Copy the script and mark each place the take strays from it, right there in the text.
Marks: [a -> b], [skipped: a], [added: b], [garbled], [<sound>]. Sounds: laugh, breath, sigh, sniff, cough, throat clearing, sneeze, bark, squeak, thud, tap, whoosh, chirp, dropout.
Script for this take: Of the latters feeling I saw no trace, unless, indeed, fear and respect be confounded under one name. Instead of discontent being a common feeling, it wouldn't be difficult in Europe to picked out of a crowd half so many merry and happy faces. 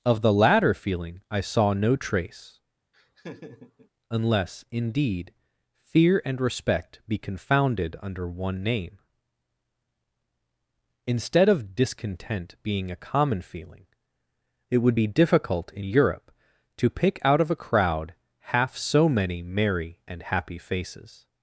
Of the [latters -> latter] feeling I saw no trace, [laugh] unless, indeed, fear and respect be confounded under one name. Instead of discontent being a common feeling, it [wouldn't -> would] be difficult in Europe to [picked -> pick] out of a crowd half so many merry and happy faces.